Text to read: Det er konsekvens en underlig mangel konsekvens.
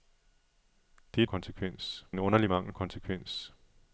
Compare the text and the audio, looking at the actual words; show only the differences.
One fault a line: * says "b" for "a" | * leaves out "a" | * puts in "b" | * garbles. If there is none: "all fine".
all fine